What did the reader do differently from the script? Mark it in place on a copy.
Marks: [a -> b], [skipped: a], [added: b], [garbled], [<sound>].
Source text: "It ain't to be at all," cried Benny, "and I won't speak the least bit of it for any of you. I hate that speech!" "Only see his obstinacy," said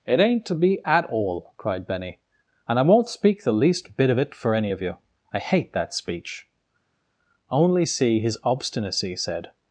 "It ain't to be at all," cried Benny, "and I won't speak the least bit of it for any of you. I hate that speech!" "Only see his obstinacy," said